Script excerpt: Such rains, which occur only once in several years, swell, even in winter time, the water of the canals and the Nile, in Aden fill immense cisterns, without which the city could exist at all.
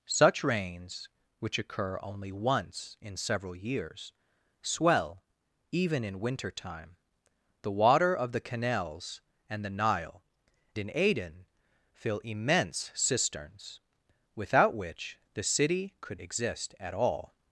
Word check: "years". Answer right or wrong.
right